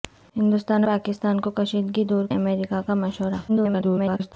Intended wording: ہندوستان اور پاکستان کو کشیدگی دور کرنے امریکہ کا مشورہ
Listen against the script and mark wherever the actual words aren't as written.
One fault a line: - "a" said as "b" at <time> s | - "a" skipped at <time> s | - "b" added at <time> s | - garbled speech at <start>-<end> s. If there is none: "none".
- "اور" skipped at 0.8 s
- "کرنے" skipped at 2.2 s
- garbled speech at 3.5-4.3 s